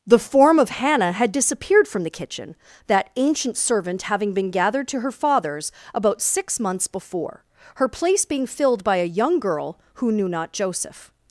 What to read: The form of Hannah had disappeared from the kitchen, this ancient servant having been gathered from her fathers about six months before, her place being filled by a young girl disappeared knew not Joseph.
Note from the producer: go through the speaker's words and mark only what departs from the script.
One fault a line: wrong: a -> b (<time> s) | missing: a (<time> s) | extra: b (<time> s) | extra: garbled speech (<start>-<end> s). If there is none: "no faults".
wrong: this -> that (2.9 s)
wrong: from -> to (4.9 s)
wrong: disappeared -> who (9.9 s)